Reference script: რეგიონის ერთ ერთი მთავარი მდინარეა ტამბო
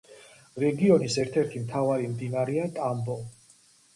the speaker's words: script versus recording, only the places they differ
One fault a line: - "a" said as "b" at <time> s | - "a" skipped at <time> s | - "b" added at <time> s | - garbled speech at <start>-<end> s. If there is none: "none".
none